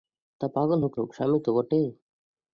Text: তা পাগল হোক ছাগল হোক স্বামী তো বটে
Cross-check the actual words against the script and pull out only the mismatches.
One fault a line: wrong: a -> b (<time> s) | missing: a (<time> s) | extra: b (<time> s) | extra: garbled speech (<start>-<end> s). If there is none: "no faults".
missing: ছাগল (0.9 s)